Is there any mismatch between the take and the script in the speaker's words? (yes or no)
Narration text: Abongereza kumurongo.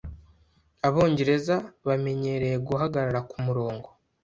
yes